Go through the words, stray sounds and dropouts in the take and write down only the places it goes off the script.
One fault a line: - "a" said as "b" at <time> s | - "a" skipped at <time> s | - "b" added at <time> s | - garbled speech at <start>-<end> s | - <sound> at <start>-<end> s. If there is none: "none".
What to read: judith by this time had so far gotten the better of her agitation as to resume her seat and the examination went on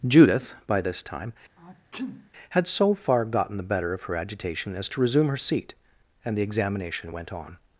- sneeze at 1.6-2.3 s